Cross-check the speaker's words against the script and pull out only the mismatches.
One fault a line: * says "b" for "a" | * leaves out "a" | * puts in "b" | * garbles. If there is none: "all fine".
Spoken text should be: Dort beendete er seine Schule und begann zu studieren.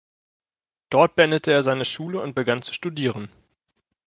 all fine